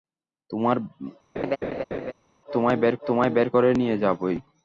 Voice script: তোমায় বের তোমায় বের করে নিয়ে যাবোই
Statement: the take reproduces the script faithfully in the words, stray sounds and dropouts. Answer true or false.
false